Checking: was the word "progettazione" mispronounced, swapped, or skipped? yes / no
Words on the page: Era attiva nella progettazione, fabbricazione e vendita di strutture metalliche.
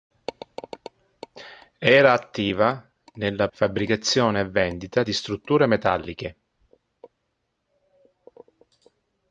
yes